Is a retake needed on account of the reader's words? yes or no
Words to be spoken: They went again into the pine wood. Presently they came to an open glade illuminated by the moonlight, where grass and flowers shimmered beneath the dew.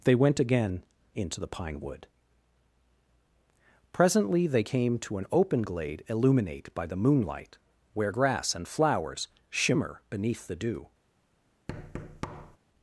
yes